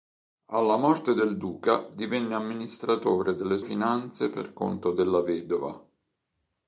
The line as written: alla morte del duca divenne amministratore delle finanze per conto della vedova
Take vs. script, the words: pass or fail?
pass